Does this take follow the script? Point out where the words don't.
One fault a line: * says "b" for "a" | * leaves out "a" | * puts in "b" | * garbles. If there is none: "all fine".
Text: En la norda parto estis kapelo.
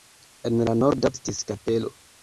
* leaves out "parto"